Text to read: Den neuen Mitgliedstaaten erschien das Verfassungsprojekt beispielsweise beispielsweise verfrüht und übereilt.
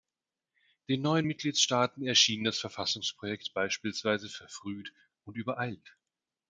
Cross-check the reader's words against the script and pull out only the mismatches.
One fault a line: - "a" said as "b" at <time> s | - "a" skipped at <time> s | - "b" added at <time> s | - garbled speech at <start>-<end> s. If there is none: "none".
- "beispielsweise" skipped at 4.3 s